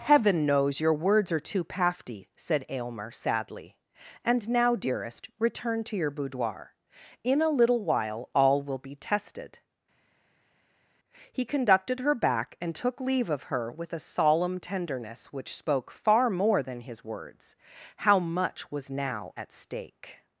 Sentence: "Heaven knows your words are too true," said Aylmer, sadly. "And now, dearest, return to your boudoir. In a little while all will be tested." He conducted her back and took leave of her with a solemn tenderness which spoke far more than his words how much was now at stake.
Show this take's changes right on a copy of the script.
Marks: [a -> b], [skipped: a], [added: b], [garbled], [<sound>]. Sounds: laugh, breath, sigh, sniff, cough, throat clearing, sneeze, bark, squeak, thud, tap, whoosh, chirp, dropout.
"Heaven knows your words are too [true," -> pafty] said Aylmer, sadly. "And now, dearest, return to your boudoir. In a little while all will be tested." He conducted her back and took leave of her with a solemn tenderness which spoke far more than his words how much was now at stake.